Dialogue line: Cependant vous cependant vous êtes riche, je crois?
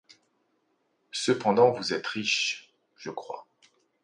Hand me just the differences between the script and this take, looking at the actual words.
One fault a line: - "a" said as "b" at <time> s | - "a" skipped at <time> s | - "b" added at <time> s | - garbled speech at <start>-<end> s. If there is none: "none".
- "cependant vous" skipped at 1.9 s